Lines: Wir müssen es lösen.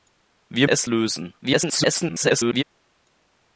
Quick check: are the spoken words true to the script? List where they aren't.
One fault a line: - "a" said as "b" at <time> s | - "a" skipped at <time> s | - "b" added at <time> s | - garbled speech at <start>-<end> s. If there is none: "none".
- "müssen" skipped at 0.7 s
- garbled speech at 1.4-2.6 s